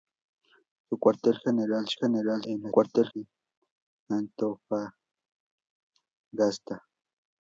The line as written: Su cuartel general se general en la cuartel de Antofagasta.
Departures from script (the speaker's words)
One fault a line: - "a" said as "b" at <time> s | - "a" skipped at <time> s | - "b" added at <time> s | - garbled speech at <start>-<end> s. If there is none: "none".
none